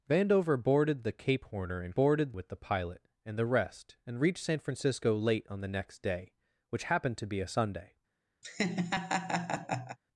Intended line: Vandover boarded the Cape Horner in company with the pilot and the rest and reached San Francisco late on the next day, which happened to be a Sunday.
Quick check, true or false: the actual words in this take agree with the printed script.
false